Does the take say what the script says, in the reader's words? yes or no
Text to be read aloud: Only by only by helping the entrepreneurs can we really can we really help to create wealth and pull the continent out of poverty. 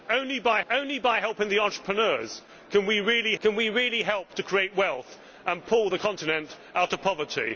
yes